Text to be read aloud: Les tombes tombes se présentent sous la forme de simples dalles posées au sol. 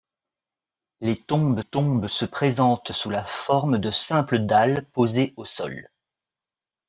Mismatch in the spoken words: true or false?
false